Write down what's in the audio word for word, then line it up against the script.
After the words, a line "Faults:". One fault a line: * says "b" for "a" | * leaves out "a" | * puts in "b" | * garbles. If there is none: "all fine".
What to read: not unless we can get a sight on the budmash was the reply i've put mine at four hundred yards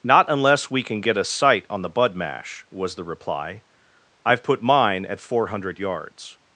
not unless we can get a sight on the budmash was the reply i've put mine at four hundred yards
Faults:
all fine